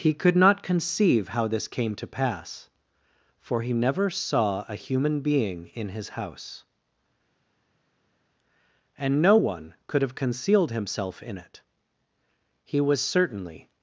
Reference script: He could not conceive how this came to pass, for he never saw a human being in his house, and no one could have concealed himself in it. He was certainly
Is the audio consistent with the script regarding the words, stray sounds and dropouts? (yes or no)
yes